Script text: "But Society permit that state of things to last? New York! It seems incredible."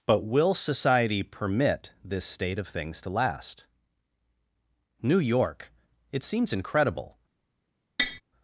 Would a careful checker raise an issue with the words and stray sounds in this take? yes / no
yes